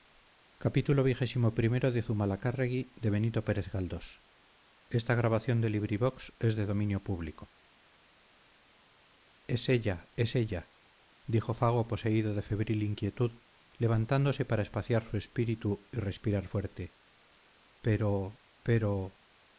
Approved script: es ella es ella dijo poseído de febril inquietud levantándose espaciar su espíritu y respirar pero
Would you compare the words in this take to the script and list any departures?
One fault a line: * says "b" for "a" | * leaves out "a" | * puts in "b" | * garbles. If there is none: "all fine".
* puts in "fago"
* puts in "para"
* puts in "fuerte pero"